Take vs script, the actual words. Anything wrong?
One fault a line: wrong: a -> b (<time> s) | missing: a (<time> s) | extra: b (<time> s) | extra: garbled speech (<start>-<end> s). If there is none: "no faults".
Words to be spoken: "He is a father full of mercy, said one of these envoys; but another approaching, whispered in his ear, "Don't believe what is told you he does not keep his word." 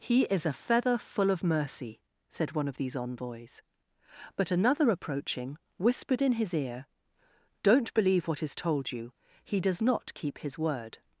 wrong: father -> feather (0.5 s)